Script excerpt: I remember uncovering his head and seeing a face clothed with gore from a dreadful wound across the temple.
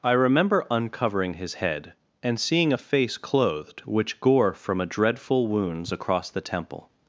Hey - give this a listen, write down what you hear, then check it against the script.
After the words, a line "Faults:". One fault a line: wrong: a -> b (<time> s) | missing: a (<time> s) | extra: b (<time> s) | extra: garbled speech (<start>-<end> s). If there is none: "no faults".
I remember uncovering his head and seeing a face clothed which gore from a dreadful wounds across the temple.
Faults:
wrong: with -> which (3.8 s)
wrong: wound -> wounds (5.5 s)